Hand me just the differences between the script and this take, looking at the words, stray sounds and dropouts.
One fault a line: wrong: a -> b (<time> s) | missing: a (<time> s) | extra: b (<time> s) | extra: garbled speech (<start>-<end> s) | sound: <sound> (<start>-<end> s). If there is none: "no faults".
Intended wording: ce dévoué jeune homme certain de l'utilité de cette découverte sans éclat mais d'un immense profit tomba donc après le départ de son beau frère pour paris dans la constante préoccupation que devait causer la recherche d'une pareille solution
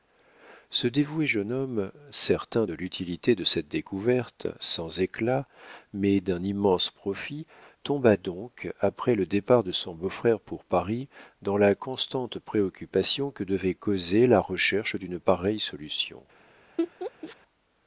sound: laugh (16.8-17.4 s)